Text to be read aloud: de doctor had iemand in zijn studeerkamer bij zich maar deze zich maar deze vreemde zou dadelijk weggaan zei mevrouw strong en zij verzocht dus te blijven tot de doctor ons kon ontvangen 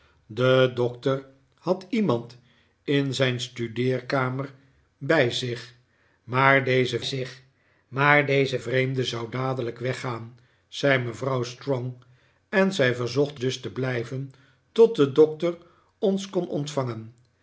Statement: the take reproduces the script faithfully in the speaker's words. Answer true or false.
true